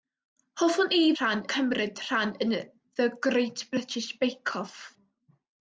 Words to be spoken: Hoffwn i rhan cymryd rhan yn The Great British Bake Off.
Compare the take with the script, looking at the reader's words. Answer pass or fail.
pass